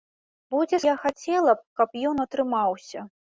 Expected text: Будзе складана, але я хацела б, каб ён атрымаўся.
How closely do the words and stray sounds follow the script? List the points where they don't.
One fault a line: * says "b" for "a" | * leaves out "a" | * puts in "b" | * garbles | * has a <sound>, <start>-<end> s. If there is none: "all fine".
* leaves out "складана але"